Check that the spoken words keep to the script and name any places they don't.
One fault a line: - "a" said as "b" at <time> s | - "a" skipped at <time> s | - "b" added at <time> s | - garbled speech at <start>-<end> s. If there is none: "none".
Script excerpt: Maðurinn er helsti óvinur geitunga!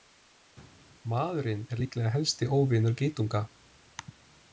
- "líklega" added at 1.8 s